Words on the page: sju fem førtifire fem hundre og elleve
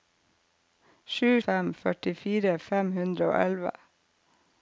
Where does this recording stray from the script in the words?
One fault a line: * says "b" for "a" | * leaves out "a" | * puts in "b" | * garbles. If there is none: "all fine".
all fine